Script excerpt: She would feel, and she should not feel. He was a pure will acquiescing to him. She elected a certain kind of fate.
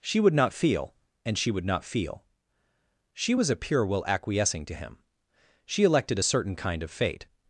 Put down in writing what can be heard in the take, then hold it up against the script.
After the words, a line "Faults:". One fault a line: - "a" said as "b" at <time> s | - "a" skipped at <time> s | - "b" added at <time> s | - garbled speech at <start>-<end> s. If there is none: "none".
She would not feel, and she would not feel. She was a pure will acquiescing to him. She elected a certain kind of fate.
Faults:
- "not" added at 0.3 s
- "should" said as "would" at 1.5 s
- "He" said as "She" at 3.1 s